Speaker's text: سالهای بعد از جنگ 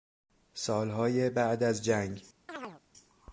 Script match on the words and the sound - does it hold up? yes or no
no